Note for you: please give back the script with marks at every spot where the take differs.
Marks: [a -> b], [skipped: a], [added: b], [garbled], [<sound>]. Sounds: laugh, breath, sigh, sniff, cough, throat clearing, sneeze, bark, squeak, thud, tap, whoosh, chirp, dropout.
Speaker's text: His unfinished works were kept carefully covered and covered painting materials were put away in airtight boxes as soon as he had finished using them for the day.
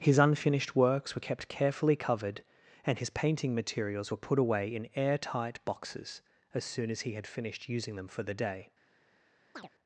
His unfinished works were kept carefully covered and [covered -> his] painting materials were put away in airtight boxes as soon as he had finished using them for the day. [chirp]